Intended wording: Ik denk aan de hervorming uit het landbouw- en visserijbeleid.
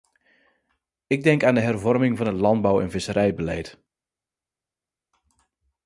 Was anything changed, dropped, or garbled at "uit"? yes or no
yes